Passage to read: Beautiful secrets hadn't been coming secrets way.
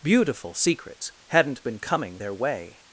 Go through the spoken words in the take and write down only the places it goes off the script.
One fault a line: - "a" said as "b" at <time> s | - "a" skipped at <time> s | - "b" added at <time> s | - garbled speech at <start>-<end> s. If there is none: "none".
- "secrets" said as "their" at 2.1 s